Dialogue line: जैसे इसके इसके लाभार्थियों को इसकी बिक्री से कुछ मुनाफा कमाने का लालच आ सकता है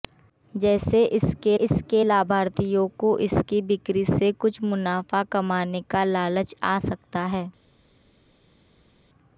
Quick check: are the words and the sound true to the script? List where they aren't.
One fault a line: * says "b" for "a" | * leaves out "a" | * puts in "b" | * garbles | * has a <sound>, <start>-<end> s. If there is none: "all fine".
all fine